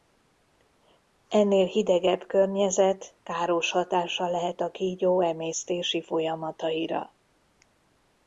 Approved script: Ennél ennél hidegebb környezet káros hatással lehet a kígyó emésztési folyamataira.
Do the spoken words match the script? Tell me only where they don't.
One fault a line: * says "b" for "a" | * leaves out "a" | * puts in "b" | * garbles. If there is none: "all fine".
* leaves out "ennél"